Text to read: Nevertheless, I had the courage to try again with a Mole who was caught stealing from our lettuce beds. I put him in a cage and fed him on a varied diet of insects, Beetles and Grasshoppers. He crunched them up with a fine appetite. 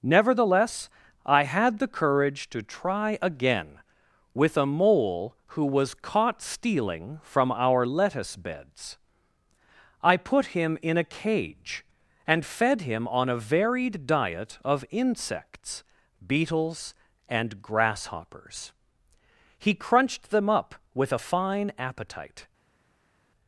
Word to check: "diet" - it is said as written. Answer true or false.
true